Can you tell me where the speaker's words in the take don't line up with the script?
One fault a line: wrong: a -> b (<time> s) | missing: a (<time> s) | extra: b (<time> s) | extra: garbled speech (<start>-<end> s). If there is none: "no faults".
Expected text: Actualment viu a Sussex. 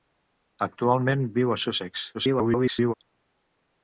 extra: garbled speech (2.1-2.9 s)